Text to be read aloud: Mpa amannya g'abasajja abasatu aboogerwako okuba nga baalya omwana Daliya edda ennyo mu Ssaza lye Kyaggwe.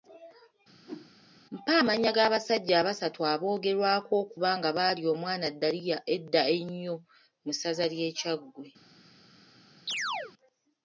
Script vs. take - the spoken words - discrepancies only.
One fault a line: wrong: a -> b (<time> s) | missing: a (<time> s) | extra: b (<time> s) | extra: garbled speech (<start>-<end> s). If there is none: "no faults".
no faults